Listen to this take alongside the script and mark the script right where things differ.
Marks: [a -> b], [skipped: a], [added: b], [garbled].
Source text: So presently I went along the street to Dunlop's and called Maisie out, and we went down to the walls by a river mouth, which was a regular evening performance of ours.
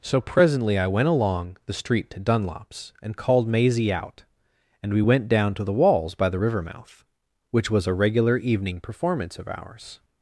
So presently I went along the street to Dunlop's and called Maisie out, and we went down to the walls by [a -> the] river mouth, which was a regular evening performance of ours.